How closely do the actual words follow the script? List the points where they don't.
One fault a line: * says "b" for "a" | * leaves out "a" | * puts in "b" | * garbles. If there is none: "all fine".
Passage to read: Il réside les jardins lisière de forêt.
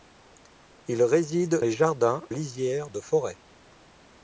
all fine